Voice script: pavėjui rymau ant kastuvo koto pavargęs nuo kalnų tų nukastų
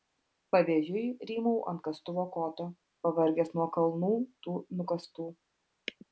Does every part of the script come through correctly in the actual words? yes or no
yes